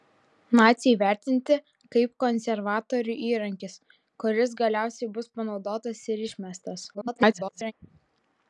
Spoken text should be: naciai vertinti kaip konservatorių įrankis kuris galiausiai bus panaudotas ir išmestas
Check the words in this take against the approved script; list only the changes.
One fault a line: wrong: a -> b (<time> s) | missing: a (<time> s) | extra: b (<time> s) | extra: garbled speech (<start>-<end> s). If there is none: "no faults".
extra: garbled speech (6.9-7.7 s)